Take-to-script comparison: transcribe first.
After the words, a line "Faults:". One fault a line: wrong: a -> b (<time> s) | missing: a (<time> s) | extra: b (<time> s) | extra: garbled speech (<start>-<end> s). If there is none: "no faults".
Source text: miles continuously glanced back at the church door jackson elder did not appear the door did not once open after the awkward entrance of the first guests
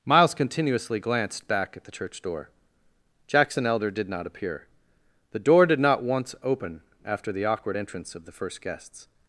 miles continuously glanced back at the church door jackson elder did not appear the door did not once open after the awkward entrance of the first guests
Faults:
no faults